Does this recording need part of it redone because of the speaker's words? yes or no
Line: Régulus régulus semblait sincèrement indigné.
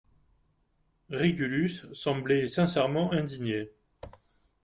yes